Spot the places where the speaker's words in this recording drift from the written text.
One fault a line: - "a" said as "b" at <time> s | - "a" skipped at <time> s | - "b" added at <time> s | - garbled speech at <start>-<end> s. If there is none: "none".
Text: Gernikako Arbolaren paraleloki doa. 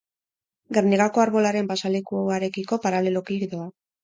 - "pasealekuarekiko" added at 1.7 s